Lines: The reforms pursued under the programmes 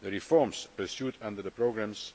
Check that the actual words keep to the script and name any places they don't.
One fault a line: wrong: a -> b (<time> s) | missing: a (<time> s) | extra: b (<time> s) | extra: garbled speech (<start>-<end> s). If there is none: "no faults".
no faults